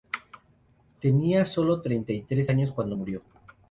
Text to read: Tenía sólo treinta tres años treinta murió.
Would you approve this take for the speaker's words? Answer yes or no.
no